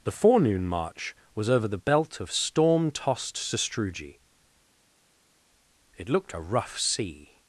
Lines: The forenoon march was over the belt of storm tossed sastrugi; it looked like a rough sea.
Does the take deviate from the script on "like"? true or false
true